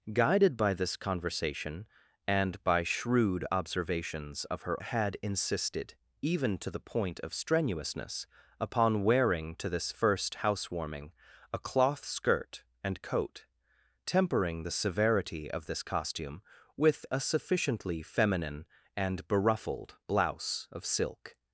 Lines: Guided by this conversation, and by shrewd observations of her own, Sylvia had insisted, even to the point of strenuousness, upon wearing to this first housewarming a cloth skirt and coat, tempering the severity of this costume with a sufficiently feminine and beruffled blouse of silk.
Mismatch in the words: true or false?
true